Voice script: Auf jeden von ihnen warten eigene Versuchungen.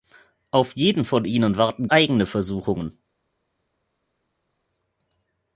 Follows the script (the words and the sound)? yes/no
yes